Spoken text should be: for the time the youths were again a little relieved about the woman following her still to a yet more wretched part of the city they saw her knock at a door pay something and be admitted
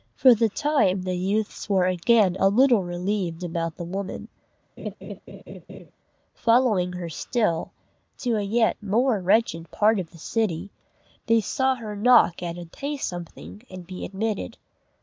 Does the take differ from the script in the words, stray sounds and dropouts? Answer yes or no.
yes